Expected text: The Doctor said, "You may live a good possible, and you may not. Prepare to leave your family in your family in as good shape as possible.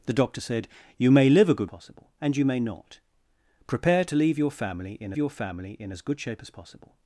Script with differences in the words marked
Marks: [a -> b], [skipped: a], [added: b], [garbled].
The Doctor said, "You may live a good possible, and you may not. Prepare to leave your family in your family in as good shape as possible.